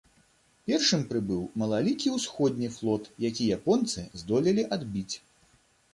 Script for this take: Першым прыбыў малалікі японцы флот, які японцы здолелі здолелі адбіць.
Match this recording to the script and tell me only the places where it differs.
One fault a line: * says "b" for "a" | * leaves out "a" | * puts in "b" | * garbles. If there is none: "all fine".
* says "ўсходні" for "японцы"
* leaves out "здолелі"